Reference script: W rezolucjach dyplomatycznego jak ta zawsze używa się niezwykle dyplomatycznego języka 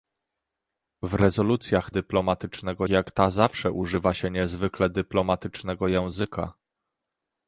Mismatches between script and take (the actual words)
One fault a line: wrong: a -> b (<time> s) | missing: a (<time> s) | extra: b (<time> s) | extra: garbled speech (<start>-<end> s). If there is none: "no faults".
no faults